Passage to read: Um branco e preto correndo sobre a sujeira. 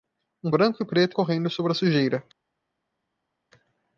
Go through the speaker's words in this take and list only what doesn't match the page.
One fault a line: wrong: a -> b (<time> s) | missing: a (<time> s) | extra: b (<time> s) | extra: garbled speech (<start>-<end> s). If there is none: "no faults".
no faults